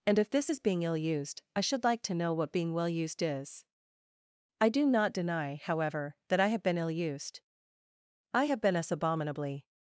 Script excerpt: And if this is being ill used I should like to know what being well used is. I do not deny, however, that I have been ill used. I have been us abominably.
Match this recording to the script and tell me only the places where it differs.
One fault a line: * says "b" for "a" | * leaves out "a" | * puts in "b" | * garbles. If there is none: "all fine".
all fine